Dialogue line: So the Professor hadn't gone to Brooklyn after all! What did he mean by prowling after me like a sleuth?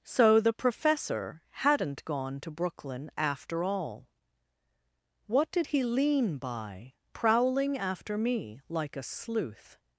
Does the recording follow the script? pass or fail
fail